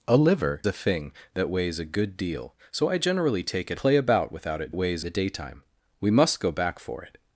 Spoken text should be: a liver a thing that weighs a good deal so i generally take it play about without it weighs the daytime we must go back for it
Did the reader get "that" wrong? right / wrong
right